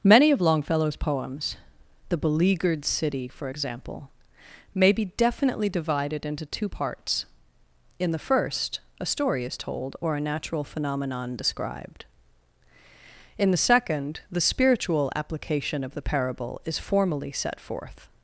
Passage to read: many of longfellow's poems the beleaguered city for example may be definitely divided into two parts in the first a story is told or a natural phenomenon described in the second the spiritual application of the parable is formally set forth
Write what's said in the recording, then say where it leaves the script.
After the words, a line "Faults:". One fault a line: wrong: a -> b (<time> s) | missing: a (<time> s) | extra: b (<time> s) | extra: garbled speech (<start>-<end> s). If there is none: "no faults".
many of longfellow's poems the beleaguered city for example may be definitely divided into two parts in the first a story is told or a natural phenomenon described in the second the spiritual application of the parable is formally set forth
Faults:
no faults